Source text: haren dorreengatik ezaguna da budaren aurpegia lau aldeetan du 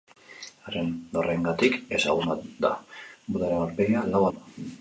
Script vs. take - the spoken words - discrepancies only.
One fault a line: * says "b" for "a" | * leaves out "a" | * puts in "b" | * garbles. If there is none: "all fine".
* leaves out "aldeetan"